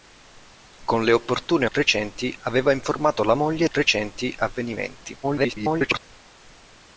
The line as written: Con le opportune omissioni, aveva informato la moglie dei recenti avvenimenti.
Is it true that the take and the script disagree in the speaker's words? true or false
true